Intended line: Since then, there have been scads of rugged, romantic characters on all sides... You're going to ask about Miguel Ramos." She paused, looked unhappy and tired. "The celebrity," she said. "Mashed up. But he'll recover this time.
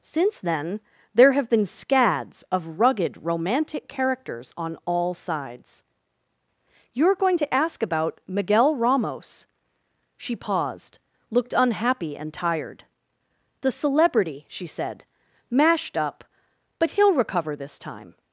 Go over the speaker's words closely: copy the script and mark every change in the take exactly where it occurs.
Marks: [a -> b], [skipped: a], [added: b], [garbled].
Since then, there have been scads of rugged, romantic characters on all sides... You're going to ask about Miguel Ramos." She paused, looked unhappy and tired. "The celebrity," she said. "Mashed up. But he'll recover this time.